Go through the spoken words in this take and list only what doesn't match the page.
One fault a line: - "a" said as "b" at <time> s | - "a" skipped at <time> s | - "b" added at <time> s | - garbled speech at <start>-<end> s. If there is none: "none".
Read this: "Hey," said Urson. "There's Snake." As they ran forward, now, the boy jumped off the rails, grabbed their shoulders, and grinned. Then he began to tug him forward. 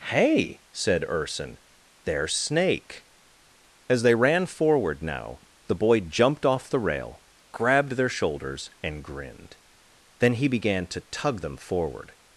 - "rails" said as "rail" at 6.8 s
- "him" said as "them" at 11.4 s